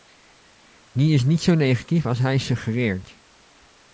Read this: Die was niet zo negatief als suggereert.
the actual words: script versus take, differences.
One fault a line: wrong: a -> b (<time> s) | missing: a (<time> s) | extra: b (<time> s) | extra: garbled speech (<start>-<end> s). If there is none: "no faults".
wrong: was -> is (1.1 s)
extra: hij (2.2 s)